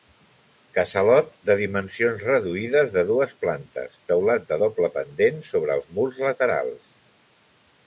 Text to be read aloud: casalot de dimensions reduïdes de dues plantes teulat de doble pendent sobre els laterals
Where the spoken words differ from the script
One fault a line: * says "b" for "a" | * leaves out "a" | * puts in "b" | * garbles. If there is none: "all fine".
* puts in "murs"